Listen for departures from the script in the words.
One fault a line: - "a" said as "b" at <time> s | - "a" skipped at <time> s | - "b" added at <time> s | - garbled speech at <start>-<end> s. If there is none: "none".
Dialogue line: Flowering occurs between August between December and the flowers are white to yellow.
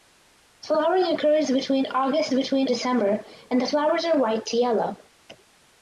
none